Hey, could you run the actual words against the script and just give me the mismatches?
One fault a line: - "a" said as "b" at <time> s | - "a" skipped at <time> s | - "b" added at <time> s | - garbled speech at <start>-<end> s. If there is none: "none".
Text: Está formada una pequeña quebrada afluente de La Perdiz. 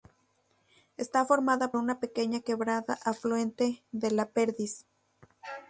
none